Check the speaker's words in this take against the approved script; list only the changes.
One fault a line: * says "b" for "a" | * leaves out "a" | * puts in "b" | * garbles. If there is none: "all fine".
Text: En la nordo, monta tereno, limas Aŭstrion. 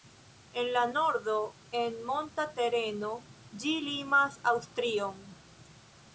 * puts in "en"
* puts in "ĝi"